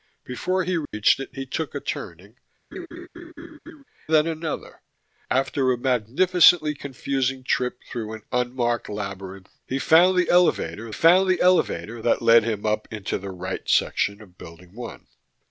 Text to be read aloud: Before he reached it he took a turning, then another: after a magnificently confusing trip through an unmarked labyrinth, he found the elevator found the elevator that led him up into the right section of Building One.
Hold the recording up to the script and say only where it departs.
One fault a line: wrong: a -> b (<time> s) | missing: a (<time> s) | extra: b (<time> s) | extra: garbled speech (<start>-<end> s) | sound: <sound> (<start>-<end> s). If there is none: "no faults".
sound: dropout (0.8-0.9 s)
sound: laugh (2.7-3.8 s)